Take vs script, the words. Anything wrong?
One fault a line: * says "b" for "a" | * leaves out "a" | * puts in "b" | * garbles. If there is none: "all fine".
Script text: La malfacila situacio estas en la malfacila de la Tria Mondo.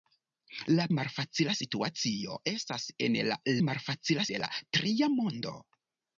all fine